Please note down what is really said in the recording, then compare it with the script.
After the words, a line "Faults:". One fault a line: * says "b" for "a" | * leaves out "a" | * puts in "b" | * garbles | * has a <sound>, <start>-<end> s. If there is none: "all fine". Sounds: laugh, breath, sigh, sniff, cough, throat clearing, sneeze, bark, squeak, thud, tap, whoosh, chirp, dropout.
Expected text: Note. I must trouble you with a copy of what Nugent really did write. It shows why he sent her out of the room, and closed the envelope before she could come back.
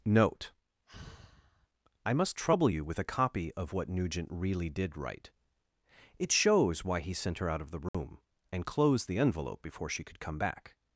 Note. I must trouble you with a copy of what Nugent really did write. It shows why he sent her out of the room, and closed the envelope before she could come back.
Faults:
* has a sigh, 0.9-1.7 s
* has a dropout, 7.9-7.9 s